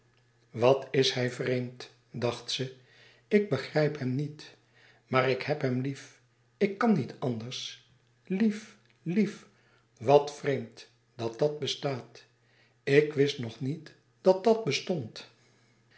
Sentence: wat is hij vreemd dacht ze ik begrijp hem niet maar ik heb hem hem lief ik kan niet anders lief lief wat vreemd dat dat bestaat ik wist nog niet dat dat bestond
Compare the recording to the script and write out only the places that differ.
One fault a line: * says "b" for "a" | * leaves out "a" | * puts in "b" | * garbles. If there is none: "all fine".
* leaves out "hem"